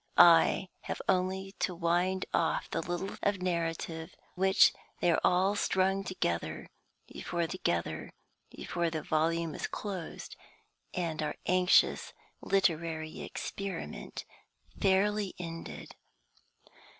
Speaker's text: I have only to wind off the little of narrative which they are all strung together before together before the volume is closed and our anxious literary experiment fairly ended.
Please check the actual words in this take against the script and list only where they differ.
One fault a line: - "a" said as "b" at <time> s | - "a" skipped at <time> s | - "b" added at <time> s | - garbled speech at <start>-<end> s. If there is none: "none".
none